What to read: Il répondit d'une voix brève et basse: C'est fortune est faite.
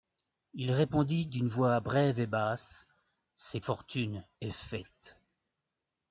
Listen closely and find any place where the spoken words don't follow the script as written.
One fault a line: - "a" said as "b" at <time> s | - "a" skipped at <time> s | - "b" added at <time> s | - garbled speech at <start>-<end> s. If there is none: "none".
none